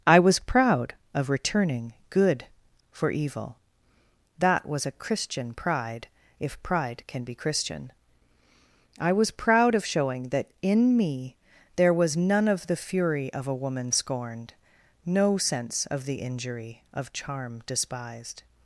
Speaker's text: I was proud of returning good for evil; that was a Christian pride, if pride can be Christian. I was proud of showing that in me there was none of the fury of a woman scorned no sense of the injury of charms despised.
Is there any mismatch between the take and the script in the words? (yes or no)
yes